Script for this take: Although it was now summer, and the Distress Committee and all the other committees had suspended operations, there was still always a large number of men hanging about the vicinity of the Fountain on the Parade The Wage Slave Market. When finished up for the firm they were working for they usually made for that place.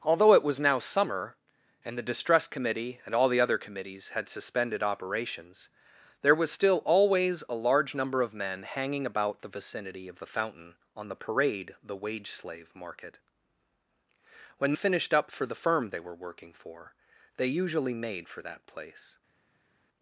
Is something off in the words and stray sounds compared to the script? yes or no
no